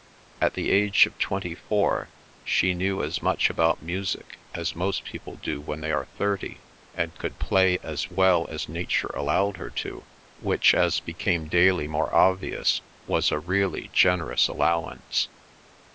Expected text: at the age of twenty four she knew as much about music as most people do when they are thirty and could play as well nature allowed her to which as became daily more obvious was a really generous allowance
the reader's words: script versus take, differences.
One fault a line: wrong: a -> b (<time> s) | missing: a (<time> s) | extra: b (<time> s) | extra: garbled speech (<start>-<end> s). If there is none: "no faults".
extra: as (8.5 s)